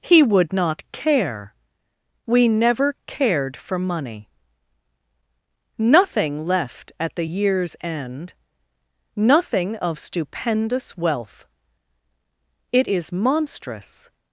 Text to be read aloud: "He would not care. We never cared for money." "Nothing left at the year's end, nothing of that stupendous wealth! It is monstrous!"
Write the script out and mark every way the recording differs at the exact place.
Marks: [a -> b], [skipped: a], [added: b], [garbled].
"He would not care. We never cared for money." "Nothing left at the year's end, nothing of [skipped: that] stupendous wealth! It is monstrous!"